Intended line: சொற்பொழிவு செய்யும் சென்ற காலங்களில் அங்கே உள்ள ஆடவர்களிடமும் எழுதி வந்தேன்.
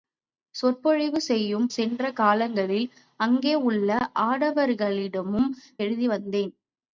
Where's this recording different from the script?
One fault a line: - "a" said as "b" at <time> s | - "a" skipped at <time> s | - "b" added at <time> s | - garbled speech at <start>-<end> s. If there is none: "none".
none